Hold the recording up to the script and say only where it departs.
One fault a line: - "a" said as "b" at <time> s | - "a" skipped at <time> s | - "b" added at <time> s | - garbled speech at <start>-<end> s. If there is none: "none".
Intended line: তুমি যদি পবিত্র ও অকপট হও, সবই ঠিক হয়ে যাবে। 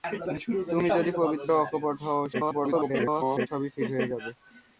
- garbled speech at 2.3-3.5 s